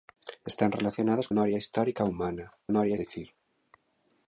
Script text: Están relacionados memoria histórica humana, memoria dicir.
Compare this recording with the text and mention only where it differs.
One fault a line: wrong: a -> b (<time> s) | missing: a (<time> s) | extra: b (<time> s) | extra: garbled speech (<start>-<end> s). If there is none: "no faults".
no faults